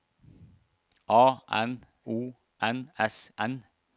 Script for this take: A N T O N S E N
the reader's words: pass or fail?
fail